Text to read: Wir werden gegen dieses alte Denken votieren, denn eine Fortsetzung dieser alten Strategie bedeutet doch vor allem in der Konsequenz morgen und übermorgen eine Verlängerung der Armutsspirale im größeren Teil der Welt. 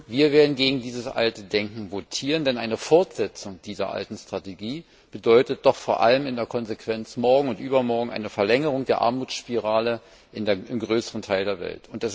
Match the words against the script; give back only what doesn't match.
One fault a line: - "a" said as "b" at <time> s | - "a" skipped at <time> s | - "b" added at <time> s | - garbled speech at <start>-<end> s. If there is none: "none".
none